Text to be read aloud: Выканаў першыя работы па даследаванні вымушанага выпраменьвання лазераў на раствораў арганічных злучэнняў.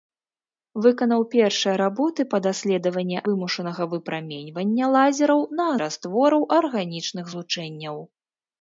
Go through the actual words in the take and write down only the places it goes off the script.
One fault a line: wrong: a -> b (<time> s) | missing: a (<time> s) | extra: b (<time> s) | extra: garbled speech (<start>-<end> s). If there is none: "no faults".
no faults